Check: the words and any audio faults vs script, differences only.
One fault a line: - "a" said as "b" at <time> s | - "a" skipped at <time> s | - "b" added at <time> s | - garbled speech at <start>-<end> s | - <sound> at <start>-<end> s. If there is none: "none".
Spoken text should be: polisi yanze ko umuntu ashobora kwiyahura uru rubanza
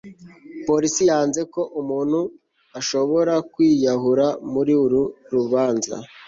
- "muri" added at 4.5 s